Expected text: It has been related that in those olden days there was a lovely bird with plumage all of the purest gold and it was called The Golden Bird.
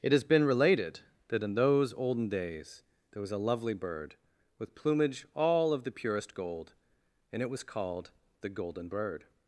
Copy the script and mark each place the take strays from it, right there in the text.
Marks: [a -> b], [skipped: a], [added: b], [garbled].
It has been related that in those olden days there was a lovely bird with plumage all of the purest gold and it was called The Golden Bird.